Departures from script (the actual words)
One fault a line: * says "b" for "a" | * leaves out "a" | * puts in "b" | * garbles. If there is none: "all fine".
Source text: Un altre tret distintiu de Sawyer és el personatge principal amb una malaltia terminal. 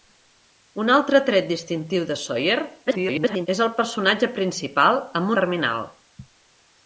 * garbles
* leaves out "una malaltia"